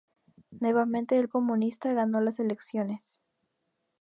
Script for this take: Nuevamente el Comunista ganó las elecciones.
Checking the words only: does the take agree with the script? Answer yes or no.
yes